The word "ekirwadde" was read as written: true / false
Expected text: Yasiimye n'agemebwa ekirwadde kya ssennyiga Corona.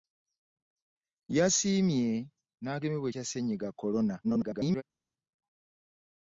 false